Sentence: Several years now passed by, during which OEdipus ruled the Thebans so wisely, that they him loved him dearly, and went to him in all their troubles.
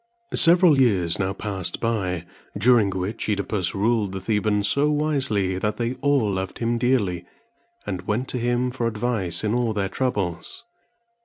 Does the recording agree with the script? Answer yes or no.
no